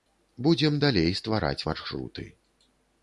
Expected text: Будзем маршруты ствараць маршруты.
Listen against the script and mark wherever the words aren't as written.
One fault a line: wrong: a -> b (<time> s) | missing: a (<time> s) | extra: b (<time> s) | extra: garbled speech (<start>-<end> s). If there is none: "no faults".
wrong: маршруты -> далей (0.8 s)